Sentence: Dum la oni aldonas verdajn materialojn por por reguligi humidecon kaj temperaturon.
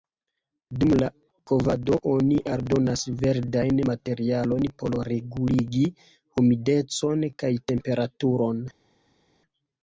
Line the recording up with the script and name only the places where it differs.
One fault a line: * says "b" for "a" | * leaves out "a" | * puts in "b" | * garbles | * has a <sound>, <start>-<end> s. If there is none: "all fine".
* puts in "kovado"
* leaves out "por"